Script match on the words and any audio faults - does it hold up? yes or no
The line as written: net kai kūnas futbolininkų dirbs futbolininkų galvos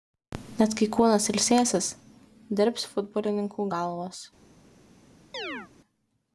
no